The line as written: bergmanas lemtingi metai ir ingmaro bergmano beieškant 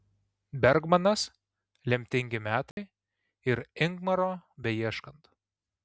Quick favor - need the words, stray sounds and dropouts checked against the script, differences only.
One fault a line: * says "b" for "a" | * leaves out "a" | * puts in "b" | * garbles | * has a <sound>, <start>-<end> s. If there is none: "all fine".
* has a dropout, 2.7-2.8 s
* leaves out "bergmano"